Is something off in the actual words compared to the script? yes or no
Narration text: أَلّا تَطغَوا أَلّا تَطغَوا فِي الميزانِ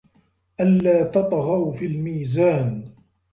yes